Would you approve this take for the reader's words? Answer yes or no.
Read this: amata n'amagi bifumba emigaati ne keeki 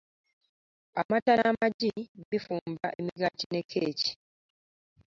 yes